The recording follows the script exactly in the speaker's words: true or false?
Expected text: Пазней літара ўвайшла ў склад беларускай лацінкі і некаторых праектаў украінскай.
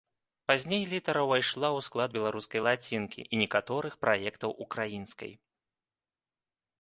true